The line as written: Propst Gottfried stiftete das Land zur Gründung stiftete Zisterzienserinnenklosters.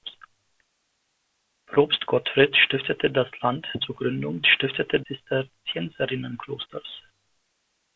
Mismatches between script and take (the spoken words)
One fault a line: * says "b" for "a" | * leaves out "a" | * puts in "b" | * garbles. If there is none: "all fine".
all fine